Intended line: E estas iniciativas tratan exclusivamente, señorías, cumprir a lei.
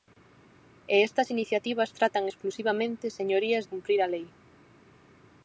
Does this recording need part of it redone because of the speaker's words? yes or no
no